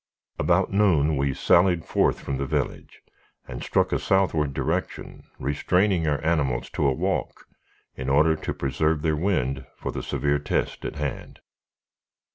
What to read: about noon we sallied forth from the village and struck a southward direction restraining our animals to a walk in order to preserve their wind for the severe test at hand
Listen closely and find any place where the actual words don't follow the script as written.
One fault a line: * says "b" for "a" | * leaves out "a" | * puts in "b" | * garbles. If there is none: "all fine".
all fine